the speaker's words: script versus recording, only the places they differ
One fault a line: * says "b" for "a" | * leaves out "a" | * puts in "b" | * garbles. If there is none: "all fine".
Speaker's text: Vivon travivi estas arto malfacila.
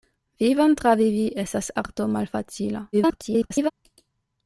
* garbles